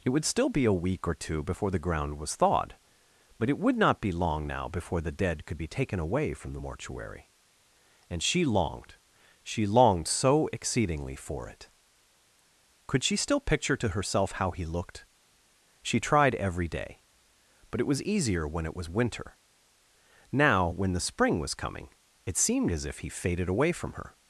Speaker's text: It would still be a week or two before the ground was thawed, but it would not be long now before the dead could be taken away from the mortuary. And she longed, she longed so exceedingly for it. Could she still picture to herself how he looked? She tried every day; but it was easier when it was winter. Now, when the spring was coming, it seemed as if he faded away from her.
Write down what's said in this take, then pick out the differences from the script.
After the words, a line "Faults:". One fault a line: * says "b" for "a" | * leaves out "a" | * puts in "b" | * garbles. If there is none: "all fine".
It would still be a week or two before the ground was thawed, but it would not be long now before the dead could be taken away from the mortuary. And she longed, she longed so exceedingly for it. Could she still picture to herself how he looked? She tried every day; but it was easier when it was winter. Now, when the spring was coming, it seemed as if he faded away from her.
Faults:
all fine